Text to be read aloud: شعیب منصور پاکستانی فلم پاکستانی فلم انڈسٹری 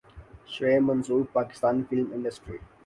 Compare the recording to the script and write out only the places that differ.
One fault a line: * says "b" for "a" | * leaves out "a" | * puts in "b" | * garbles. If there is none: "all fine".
* leaves out "پاکستانی فلم"